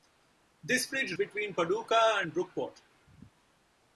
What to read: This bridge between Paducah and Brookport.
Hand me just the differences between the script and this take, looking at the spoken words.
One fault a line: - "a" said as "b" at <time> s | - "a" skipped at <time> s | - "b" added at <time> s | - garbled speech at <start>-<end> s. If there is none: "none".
none